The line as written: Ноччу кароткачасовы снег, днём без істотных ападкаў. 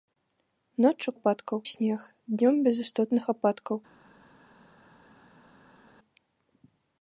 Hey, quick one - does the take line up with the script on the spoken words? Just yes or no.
no